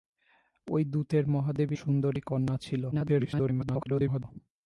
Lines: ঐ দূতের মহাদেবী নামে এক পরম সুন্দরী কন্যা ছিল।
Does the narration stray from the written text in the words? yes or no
yes